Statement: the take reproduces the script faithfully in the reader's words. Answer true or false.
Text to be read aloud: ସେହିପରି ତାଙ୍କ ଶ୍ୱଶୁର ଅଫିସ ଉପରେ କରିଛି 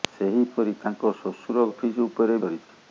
true